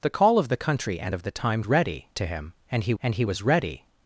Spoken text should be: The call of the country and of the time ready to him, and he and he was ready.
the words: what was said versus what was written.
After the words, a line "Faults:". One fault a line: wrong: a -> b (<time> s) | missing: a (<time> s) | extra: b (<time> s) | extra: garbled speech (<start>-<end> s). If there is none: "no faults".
The call of the country and of the time ready to him, and he and he was ready.
Faults:
no faults